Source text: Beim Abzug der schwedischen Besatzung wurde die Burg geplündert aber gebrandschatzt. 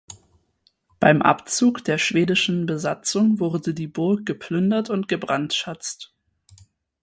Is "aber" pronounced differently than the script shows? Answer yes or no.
yes